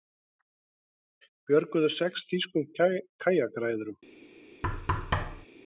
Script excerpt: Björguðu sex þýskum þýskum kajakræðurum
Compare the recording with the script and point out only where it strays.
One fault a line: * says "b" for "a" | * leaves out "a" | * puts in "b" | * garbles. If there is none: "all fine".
* leaves out "þýskum"